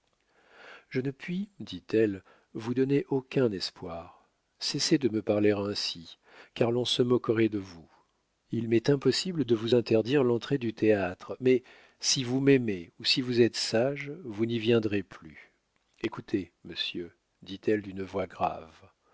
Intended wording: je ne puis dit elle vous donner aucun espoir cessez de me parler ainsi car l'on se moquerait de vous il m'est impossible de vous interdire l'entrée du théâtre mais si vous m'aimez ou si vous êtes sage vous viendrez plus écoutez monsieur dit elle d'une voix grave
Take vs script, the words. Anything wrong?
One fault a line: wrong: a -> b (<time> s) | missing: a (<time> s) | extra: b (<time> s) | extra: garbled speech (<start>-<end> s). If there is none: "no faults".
extra: n'y (14.5 s)